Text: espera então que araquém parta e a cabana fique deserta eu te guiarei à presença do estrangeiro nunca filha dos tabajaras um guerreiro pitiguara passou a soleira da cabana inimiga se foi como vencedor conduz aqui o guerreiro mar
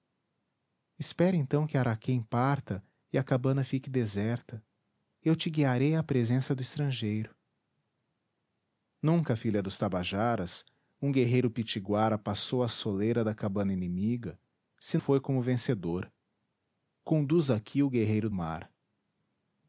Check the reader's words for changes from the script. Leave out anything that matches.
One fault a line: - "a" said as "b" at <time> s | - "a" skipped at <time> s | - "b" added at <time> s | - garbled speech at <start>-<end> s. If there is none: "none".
none